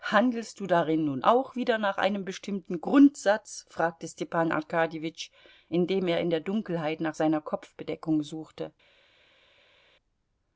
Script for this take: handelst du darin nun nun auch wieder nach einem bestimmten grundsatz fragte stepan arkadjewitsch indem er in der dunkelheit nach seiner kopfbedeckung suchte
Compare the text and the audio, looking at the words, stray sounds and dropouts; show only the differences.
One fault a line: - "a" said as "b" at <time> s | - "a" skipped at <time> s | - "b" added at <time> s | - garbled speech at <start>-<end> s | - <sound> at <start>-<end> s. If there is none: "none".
- "nun" skipped at 1.2 s